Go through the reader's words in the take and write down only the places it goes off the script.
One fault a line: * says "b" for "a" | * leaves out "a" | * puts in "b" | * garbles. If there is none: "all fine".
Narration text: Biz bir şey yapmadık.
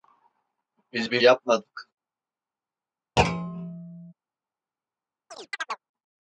* leaves out "şey"